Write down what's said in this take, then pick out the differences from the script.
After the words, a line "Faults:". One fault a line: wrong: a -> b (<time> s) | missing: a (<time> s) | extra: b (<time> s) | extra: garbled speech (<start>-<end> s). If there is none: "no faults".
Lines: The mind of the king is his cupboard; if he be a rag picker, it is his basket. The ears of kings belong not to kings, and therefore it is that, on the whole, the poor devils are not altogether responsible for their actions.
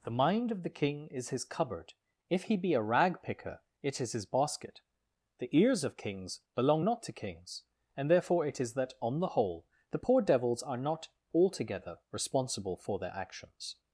The mind of the king is his cupboard; if he be a rag picker, it is his basket. The ears of kings belong not to kings, and therefore it is that, on the whole, the poor devils are not altogether responsible for their actions.
Faults:
no faults